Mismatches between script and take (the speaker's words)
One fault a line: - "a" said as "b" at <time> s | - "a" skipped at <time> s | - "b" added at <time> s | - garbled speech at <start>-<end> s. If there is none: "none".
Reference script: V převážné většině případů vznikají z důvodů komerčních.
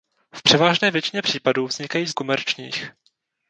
- "důvodů" skipped at 2.1 s